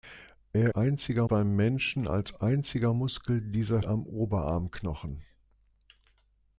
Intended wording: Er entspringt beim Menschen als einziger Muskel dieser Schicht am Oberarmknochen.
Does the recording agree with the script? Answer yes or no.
no